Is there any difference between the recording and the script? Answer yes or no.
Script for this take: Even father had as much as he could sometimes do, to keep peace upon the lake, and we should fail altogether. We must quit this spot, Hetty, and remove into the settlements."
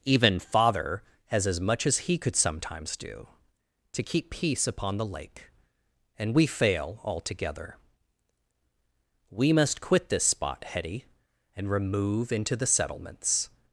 yes